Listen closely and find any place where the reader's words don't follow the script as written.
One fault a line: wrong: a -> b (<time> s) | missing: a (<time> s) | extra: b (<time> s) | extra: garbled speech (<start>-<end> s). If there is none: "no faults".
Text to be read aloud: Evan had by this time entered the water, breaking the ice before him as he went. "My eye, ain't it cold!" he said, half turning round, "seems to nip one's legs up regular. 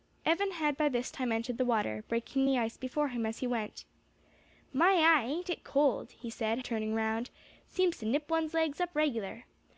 missing: half (6.6 s)